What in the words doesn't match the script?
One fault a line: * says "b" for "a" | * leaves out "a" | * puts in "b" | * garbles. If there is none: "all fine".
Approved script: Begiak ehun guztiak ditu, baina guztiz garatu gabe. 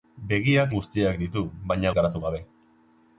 * leaves out "ehun"
* leaves out "guztiz"